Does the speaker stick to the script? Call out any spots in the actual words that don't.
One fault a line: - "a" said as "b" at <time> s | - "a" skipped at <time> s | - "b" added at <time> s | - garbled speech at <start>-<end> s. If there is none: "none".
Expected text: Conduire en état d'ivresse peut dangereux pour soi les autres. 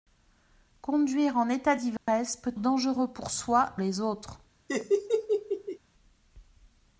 none